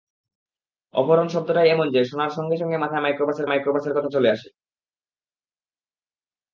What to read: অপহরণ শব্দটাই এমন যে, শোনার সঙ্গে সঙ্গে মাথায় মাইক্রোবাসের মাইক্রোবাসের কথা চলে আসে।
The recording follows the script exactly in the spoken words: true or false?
true